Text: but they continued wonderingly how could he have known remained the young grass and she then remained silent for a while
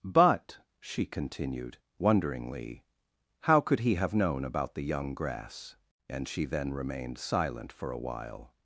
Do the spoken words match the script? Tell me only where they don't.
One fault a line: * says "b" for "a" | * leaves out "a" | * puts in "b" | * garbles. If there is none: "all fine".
* says "she" for "they"
* says "about" for "remained"